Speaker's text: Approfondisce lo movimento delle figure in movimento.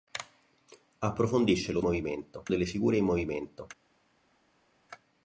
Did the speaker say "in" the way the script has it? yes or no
yes